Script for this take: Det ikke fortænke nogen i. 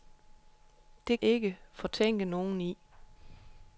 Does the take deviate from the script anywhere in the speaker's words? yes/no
no